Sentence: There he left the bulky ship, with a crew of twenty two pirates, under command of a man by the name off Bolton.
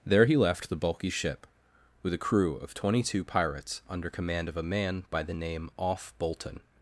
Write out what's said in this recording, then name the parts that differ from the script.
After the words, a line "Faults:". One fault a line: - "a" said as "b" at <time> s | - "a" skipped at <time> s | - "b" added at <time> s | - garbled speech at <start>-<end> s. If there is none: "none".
There he left the bulky ship, with a crew of twenty two pirates, under command of a man by the name off Bolton.
Faults:
none